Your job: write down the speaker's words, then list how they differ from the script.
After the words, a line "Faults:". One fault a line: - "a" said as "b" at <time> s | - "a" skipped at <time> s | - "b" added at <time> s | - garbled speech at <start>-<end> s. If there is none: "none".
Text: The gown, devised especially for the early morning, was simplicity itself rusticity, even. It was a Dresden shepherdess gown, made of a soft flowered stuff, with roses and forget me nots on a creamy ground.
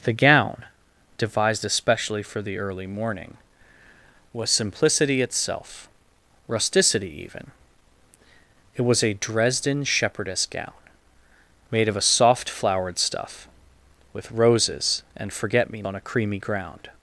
The gown, devised especially for the early morning, was simplicity itself rusticity, even. It was a Dresden shepherdess gown, made of a soft flowered stuff, with roses and forget me on a creamy ground.
Faults:
- "nots" skipped at 15.8 s